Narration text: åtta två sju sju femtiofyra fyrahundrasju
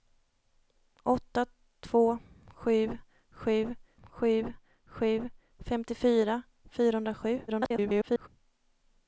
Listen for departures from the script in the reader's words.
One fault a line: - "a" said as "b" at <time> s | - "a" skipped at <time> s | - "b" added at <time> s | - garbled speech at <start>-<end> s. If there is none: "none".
- "sju sju" added at 4.0 s
- garbled speech at 7.5-8.3 s